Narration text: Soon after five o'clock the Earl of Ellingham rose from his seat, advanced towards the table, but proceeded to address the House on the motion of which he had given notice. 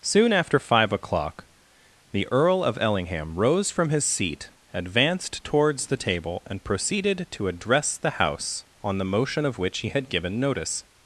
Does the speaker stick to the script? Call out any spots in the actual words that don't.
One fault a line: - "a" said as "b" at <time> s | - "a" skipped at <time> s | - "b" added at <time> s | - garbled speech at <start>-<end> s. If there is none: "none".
- "but" said as "and" at 6.5 s